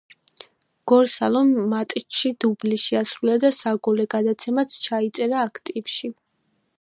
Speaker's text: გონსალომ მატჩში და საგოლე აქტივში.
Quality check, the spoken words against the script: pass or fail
fail